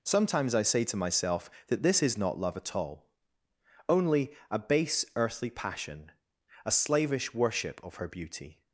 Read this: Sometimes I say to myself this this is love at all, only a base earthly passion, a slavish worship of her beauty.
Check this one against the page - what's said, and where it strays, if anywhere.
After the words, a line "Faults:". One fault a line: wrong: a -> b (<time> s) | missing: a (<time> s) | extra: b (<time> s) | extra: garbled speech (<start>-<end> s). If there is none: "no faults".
Sometimes I say to myself that this is not love at all, only a base earthly passion, a slavish worship of her beauty.
Faults:
wrong: this -> that (1.7 s)
extra: not (2.2 s)